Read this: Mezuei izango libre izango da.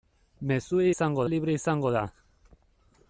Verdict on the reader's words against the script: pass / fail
pass